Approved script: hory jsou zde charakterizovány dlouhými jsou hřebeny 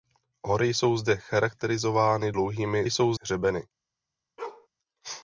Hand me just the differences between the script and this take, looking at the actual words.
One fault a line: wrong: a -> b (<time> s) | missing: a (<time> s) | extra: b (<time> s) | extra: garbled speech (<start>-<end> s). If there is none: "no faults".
no faults